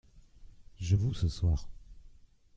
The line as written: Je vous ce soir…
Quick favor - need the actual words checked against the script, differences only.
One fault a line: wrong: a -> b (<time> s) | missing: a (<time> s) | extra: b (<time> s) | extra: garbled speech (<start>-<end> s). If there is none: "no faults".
no faults